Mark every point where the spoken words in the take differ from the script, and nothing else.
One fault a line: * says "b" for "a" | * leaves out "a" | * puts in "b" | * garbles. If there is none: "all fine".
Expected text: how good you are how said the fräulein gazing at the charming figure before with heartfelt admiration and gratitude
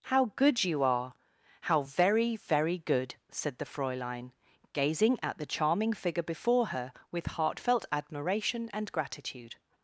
* puts in "very very good"
* puts in "her"